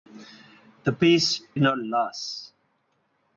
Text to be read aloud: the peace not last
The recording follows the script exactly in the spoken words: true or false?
true